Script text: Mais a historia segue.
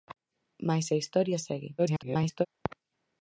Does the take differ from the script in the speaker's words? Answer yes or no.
yes